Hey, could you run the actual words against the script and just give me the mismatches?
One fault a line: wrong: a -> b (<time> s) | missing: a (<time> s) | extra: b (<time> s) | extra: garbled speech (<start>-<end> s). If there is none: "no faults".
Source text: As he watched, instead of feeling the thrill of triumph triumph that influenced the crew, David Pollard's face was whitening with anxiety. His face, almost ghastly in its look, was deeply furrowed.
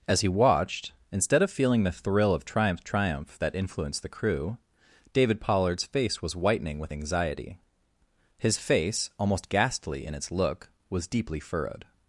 no faults